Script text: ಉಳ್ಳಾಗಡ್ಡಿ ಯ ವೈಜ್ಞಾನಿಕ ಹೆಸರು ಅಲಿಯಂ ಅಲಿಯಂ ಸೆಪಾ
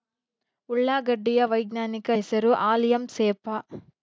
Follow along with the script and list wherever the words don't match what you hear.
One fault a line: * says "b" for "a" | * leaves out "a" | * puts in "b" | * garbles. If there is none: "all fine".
* leaves out "ಅಲಿಯಂ"